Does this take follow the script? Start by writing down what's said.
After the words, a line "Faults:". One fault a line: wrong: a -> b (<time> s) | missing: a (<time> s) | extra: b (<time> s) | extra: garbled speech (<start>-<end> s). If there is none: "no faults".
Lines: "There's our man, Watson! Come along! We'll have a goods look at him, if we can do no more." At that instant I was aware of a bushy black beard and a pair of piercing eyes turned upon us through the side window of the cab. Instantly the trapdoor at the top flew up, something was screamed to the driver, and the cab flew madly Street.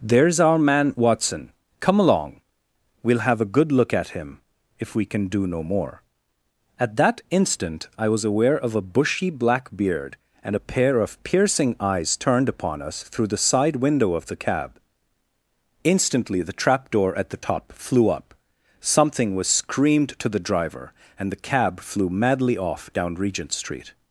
"There's our man, Watson! Come along! We'll have a good look at him, if we can do no more." At that instant I was aware of a bushy black beard and a pair of piercing eyes turned upon us through the side window of the cab. Instantly the trapdoor at the top flew up, something was screamed to the driver, and the cab flew madly off down Regent Street.
Faults:
wrong: goods -> good (3.5 s)
extra: off down Regent (22.5 s)